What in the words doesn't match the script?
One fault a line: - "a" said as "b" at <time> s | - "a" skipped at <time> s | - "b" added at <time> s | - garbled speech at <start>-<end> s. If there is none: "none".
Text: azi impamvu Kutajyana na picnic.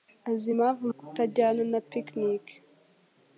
none